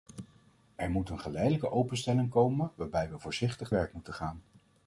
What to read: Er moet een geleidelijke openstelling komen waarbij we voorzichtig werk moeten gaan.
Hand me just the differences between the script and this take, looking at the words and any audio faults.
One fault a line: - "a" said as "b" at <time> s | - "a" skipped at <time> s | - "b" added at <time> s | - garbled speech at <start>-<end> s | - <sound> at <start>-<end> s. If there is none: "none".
none